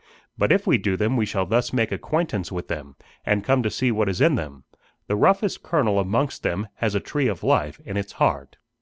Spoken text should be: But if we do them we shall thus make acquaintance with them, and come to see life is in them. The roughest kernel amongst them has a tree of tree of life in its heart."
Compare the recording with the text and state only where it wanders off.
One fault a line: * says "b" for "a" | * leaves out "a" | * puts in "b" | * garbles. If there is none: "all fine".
* says "what" for "life"
* leaves out "tree of"